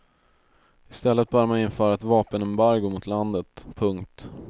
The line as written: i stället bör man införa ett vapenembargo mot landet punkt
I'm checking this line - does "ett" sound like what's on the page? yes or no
yes